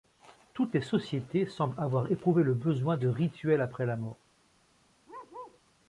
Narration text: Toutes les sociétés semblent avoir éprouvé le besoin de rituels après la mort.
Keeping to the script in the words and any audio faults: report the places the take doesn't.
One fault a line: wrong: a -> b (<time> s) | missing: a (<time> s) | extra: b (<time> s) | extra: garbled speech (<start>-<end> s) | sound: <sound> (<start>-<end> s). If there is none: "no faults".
sound: bark (5.1-5.6 s)